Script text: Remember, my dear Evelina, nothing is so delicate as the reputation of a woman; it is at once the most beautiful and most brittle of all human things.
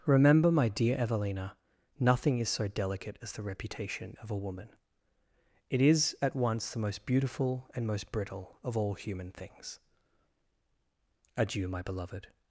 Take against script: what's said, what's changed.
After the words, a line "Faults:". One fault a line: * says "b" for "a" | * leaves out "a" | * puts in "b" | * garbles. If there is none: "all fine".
Remember, my dear Evelina, nothing is so delicate as the reputation of a woman; it is at once the most beautiful and most brittle of all human things. Adieu, my beloved
Faults:
* puts in "Adieu my beloved"